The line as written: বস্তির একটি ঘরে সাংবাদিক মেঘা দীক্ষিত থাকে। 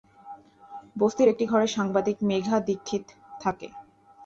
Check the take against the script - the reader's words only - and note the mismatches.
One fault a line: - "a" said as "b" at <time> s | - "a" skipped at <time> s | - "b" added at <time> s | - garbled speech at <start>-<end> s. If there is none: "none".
none